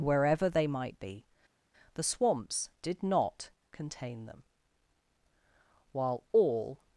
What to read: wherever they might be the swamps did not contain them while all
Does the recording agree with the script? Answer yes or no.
yes